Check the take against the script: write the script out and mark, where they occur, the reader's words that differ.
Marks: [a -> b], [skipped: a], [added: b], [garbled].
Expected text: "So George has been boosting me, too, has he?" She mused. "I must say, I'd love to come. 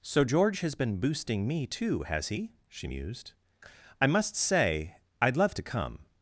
"So George has been boosting me, too, has he?" She mused. "I must say, I'd love to come.